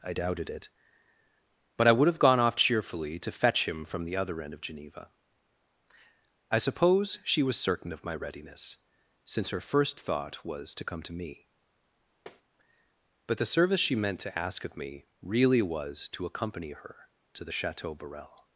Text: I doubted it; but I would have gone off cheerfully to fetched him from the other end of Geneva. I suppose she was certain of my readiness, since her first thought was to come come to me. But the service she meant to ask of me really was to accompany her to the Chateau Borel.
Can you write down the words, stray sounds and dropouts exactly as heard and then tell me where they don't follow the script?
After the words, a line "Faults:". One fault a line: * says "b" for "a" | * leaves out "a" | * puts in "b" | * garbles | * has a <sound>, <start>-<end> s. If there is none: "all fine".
I doubted it; but I would have gone off cheerfully to fetch him from the other end of Geneva. I suppose she was certain of my readiness, since her first thought was to come to me. But the service she meant to ask of me really was to accompany her to the Chateau Borel.
Faults:
* says "fetch" for "fetched"
* leaves out "come"
* has a tap, 12.3-12.4 s